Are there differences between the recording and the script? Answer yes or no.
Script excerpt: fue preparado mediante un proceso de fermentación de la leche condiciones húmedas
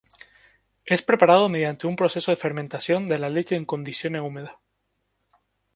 yes